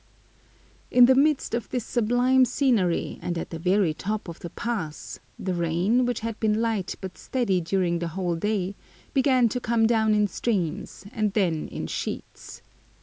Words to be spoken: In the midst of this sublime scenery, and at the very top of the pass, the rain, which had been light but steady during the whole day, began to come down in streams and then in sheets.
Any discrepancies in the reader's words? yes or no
no